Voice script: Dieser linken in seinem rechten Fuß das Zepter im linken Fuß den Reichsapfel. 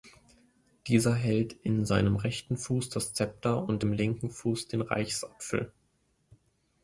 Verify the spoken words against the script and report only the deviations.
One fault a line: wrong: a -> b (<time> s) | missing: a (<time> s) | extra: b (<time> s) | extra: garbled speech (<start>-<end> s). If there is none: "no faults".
wrong: linken -> hält (1.1 s)
extra: und (3.7 s)